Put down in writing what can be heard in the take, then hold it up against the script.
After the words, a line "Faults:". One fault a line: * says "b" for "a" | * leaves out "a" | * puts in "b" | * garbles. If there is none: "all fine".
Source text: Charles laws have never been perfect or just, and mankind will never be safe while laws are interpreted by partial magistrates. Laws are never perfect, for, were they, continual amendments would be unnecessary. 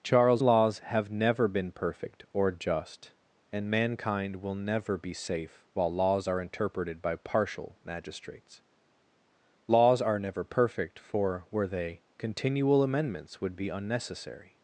Charles laws have never been perfect or just, and mankind will never be safe while laws are interpreted by partial magistrates. Laws are never perfect, for, were they, continual amendments would be unnecessary.
Faults:
all fine